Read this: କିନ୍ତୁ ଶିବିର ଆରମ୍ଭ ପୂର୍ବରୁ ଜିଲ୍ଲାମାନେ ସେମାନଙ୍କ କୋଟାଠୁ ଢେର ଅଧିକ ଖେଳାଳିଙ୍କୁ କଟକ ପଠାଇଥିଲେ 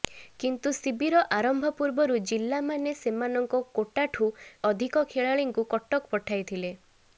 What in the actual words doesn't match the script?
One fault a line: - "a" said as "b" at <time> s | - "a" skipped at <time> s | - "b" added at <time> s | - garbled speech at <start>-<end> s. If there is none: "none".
- "ଢେର" skipped at 4.3 s